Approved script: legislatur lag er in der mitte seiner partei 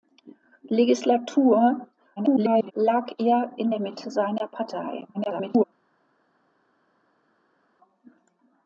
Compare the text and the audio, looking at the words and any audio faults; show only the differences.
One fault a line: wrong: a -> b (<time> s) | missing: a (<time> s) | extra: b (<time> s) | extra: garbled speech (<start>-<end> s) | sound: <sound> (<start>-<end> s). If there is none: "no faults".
extra: garbled speech (2.2-2.7 s)
extra: garbled speech (5.1-5.6 s)